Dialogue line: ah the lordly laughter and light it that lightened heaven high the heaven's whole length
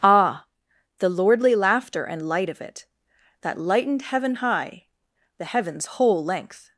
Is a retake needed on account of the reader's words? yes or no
yes